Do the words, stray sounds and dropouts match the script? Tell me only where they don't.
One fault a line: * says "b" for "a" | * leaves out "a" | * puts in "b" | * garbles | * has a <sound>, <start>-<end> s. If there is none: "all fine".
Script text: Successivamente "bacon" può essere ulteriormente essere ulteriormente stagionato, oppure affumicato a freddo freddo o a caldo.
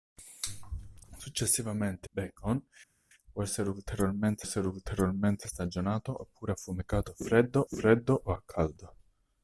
all fine